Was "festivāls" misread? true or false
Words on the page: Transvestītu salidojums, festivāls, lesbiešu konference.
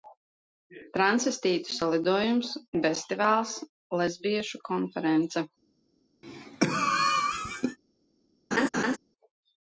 false